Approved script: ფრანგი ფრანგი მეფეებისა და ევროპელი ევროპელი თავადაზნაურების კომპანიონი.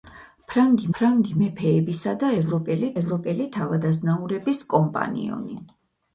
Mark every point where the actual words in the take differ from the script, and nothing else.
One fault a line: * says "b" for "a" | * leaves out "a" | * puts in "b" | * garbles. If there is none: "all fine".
all fine